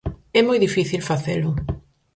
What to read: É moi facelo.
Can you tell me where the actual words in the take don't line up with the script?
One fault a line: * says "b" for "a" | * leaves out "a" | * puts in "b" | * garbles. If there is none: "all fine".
* puts in "difícil"